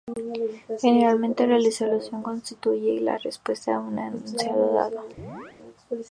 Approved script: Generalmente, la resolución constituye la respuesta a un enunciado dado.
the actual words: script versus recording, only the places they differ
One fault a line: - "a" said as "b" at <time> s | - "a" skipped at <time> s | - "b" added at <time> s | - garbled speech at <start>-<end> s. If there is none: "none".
none